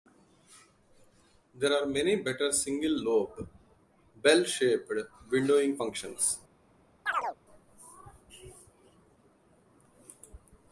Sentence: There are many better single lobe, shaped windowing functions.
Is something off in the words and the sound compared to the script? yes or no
yes